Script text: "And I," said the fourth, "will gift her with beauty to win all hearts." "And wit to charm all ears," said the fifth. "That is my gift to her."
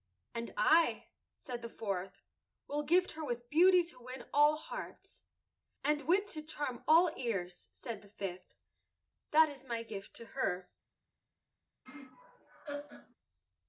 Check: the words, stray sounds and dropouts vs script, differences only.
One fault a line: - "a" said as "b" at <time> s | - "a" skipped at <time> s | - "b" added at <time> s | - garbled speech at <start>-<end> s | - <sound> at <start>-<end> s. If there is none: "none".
- laugh at 11.9-13.2 s